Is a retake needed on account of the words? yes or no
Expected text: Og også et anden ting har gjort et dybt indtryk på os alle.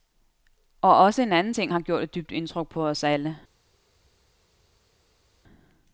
yes